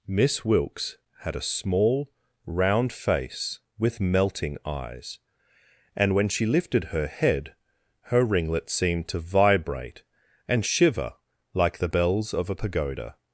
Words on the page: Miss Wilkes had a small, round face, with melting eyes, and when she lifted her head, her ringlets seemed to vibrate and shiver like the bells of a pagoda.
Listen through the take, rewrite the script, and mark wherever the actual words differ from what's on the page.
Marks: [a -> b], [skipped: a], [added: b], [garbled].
Miss Wilkes had a small, round face, with melting eyes, and when she lifted her head, her ringlets seemed to vibrate and shiver like the bells of a pagoda.